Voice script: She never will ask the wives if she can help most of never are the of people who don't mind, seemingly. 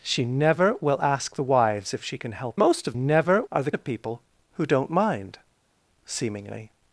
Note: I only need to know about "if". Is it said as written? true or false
true